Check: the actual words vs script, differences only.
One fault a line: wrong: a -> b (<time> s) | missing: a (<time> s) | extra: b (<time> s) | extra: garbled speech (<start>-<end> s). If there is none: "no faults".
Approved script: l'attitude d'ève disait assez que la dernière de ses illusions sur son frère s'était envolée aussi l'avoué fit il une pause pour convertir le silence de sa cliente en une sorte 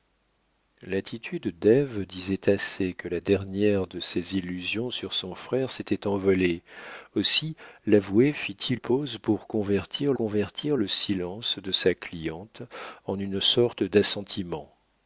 missing: une (8.8 s)
extra: convertir (10.1 s)